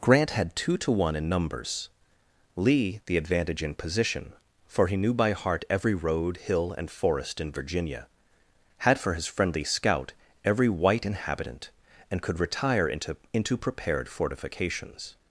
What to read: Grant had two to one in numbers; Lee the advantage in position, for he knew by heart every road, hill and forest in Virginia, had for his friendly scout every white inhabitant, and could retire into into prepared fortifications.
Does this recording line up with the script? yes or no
yes